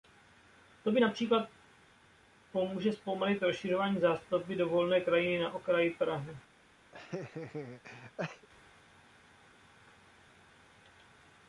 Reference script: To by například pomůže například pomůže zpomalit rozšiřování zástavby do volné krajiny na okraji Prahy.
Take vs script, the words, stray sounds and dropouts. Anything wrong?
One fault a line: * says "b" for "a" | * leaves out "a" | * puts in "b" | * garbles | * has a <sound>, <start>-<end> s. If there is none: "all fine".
* leaves out "například pomůže"
* has a laugh, 6.9-8.5 s